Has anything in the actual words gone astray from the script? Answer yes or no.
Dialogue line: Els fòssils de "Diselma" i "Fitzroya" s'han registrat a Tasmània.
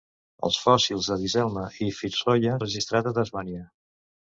yes